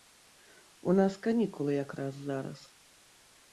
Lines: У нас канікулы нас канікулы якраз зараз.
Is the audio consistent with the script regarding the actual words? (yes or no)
no